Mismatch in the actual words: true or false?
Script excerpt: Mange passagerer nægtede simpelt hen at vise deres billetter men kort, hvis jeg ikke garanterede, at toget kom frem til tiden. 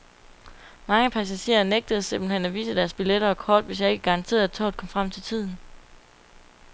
true